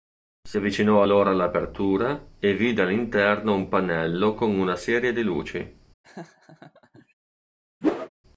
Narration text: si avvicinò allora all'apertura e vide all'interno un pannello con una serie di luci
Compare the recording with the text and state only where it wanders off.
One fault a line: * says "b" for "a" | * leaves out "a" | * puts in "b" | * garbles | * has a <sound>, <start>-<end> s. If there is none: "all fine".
* has a laugh, 6.0-7.1 s
* has a whoosh, 7.8-8.1 s